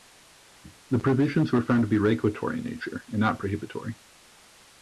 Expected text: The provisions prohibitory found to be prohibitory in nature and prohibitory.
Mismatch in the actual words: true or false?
true